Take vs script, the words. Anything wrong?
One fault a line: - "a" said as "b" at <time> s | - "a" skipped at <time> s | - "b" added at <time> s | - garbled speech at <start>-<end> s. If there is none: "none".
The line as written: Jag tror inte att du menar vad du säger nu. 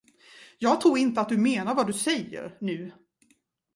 none